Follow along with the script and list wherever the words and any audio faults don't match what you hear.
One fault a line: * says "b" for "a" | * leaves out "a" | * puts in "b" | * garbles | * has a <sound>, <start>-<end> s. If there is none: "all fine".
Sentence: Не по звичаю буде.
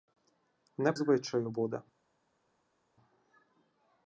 * leaves out "по"